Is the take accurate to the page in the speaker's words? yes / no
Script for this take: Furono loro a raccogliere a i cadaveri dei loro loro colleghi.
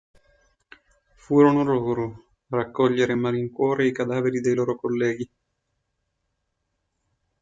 no